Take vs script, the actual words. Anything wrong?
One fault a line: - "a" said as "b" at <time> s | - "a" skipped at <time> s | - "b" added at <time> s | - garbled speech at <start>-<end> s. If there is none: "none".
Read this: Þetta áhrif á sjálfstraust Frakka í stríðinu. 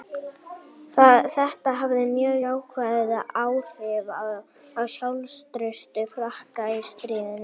- "hafði mjög jákvæð" added at 1.8 s